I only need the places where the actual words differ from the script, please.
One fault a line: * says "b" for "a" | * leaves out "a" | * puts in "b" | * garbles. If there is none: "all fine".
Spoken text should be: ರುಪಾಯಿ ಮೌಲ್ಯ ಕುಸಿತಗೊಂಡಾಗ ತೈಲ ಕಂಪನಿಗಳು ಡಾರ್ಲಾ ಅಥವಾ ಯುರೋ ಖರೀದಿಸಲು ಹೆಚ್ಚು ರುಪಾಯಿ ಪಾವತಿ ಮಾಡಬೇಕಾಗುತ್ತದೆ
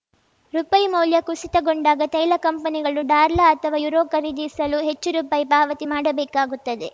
all fine